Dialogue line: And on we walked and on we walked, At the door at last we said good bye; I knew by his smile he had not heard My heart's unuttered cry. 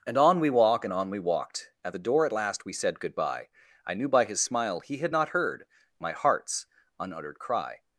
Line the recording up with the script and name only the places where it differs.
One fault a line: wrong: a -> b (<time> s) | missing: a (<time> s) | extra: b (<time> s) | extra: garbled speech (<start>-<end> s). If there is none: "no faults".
wrong: walked -> walk (0.5 s)